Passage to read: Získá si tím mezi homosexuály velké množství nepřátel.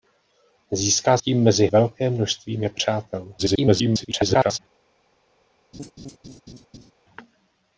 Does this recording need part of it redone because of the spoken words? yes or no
yes